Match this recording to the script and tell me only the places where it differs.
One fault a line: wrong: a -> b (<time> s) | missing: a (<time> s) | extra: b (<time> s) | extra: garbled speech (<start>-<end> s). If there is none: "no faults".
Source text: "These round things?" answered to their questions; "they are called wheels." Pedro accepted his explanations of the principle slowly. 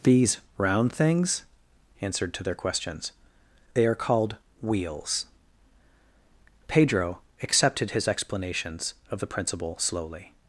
no faults